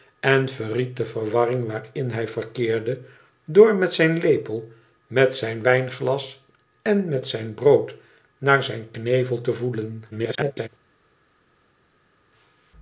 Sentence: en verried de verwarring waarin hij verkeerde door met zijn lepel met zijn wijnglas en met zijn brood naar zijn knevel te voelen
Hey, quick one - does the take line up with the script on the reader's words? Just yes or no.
no